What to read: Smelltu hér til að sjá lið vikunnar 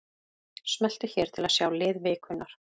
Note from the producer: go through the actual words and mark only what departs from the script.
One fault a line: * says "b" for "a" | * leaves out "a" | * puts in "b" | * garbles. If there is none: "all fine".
all fine